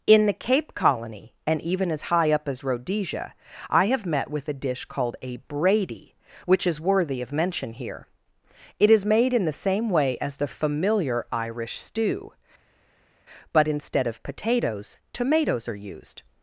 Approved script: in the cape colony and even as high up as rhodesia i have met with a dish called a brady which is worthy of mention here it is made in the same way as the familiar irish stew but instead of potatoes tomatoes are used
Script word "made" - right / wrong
right